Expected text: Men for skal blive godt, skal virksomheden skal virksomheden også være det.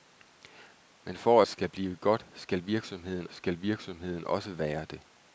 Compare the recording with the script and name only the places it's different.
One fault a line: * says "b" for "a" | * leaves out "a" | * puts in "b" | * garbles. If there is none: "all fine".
all fine